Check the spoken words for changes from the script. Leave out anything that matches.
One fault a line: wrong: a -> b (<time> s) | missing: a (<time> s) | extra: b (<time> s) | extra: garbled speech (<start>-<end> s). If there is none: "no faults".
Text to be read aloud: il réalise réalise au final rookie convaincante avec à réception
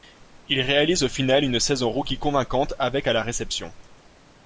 missing: réalise (1.0 s)
extra: une saison (1.4 s)
extra: la (3.1 s)